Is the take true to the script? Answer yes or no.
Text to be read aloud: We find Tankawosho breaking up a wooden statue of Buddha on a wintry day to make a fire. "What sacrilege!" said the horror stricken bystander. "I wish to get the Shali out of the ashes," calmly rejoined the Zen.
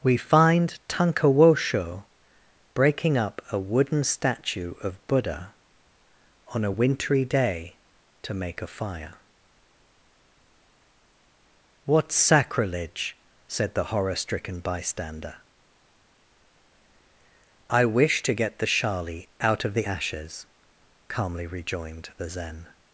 yes